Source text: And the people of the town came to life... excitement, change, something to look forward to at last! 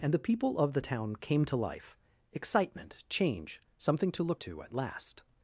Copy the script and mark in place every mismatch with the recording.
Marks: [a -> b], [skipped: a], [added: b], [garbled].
And the people of the town came to life... excitement, change, something to look [skipped: forward] to at last!